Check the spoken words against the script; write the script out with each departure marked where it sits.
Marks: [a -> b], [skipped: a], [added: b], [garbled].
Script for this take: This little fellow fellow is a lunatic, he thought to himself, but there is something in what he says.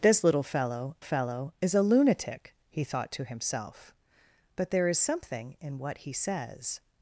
This little fellow fellow is a lunatic, he thought to himself, but there is something in what he says.